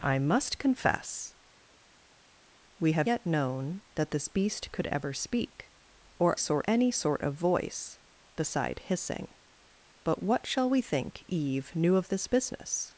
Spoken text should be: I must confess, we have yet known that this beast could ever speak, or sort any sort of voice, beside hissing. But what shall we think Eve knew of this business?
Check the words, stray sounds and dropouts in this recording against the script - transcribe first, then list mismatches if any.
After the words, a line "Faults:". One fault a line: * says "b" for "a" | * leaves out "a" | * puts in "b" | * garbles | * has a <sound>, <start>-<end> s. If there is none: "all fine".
I must confess, we have yet known that this beast could ever speak, or sort any sort of voice, beside hissing. But what shall we think Eve knew of this business?
Faults:
all fine